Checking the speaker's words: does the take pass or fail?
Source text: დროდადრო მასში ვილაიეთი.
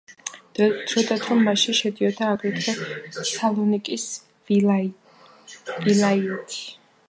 fail